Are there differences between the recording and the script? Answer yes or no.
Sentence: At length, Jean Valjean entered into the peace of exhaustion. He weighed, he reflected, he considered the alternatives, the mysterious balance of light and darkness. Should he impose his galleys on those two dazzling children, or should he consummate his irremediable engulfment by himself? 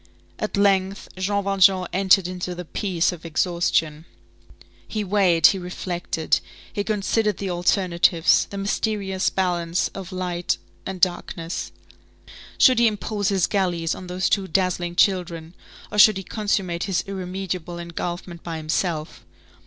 no